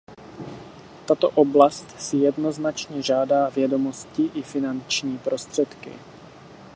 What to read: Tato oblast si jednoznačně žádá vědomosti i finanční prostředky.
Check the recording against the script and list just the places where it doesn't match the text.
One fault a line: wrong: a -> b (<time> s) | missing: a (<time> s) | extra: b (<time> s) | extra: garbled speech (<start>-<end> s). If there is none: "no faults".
no faults